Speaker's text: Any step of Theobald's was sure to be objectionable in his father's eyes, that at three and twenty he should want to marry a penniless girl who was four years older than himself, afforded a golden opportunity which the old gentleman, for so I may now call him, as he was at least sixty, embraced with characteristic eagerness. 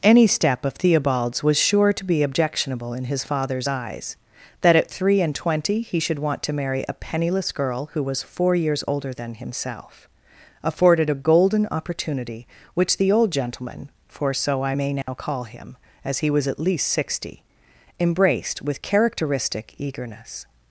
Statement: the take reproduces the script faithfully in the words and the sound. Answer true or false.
false